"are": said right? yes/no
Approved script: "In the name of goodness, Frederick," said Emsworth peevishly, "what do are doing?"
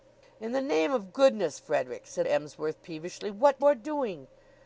yes